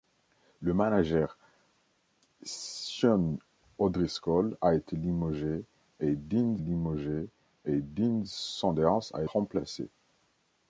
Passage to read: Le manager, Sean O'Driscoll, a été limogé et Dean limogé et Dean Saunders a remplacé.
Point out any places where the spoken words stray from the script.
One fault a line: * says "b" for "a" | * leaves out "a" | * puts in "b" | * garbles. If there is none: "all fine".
all fine